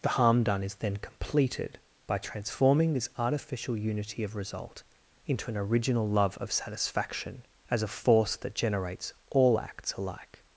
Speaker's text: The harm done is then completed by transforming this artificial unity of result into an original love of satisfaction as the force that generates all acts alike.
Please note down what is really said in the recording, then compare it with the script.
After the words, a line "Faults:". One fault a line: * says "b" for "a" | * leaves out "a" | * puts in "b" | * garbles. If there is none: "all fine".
The harm done is then completed by transforming this artificial unity of result into an original love of satisfaction as a force that generates all acts alike.
Faults:
* says "a" for "the"